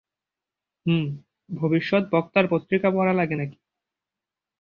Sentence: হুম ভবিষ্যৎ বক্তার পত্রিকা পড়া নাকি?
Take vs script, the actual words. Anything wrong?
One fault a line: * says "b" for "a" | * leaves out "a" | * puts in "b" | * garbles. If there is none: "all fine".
* puts in "লাগে"